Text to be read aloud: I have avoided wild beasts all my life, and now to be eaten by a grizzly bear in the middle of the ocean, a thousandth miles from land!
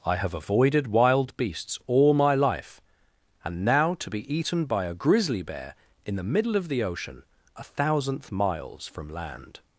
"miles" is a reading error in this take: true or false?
false